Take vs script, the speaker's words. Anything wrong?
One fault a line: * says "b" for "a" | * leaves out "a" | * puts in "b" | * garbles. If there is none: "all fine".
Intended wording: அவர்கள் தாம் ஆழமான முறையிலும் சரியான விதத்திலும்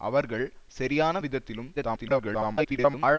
* leaves out "தாம் ஆழமான முறையிலும்"
* garbles